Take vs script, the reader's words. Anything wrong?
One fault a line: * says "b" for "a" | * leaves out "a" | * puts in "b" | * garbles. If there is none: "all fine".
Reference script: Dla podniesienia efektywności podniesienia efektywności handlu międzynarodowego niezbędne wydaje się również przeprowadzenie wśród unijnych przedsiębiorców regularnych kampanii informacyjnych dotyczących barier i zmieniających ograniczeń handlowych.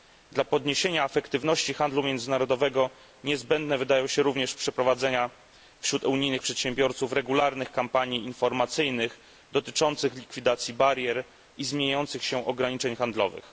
* leaves out "podniesienia efektywności"
* puts in "likwidacji"
* puts in "się"